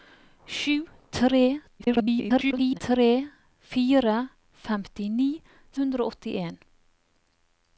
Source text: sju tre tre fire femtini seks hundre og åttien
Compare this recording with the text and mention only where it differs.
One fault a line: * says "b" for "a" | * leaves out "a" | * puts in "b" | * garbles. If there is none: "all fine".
* garbles
* leaves out "seks"